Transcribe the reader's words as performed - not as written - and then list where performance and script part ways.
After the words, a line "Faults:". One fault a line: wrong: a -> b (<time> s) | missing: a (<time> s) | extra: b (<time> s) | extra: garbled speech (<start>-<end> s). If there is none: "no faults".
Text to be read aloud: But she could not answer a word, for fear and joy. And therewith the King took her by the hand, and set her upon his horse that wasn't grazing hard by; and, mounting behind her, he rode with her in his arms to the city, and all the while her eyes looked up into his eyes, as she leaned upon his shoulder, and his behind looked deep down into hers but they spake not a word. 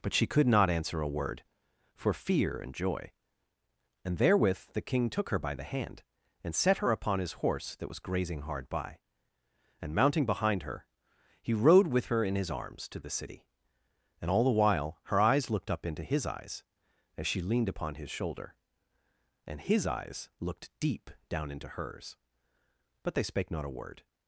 But she could not answer a word, for fear and joy. And therewith the King took her by the hand, and set her upon his horse that was grazing hard by; and, mounting behind her, he rode with her in his arms to the city, and all the while her eyes looked up into his eyes, as she leaned upon his shoulder, and his eyes looked deep down into hers but they spake not a word.
Faults:
wrong: wasn't -> was (7.9 s)
wrong: behind -> eyes (19.8 s)